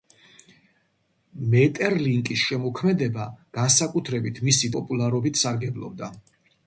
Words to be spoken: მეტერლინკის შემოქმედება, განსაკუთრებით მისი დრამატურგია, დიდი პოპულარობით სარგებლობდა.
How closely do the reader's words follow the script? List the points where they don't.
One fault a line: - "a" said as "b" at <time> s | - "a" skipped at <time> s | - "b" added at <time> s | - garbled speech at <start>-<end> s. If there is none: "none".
- "დრამატურგია დიდი" skipped at 4.7 s